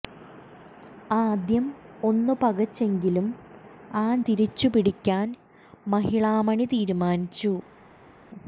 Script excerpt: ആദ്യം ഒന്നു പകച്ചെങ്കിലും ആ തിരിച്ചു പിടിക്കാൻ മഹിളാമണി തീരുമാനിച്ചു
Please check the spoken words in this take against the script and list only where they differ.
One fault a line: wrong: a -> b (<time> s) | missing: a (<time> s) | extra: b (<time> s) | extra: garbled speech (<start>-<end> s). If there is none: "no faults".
no faults